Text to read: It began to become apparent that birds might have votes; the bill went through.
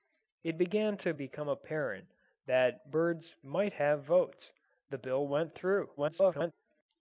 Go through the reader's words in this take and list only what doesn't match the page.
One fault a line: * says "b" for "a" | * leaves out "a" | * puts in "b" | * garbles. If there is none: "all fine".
* garbles